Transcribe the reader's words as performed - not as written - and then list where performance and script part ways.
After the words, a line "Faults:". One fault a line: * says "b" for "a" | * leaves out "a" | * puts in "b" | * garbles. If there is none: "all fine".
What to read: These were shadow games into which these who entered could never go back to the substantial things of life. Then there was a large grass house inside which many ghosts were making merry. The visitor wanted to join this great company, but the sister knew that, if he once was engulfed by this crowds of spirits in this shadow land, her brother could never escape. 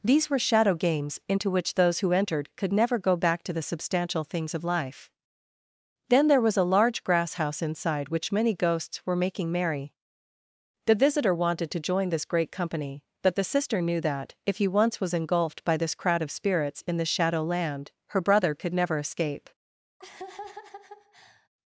These were shadow games into which those who entered could never go back to the substantial things of life. Then there was a large grass house inside which many ghosts were making merry. The visitor wanted to join this great company, but the sister knew that, if he once was engulfed by this crowd of spirits in this shadow land, her brother could never escape.
Faults:
* says "those" for "these"
* says "crowd" for "crowds"